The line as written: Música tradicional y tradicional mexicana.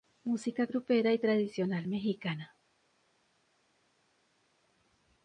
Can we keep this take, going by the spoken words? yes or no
no